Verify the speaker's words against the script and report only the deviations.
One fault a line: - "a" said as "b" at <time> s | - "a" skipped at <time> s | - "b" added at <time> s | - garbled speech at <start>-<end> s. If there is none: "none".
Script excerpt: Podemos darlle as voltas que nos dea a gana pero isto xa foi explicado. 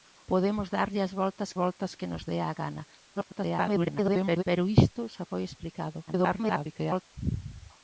- "voltas" added at 1.6 s
- garbled speech at 3.1-4.4 s
- garbled speech at 6.1-7.0 s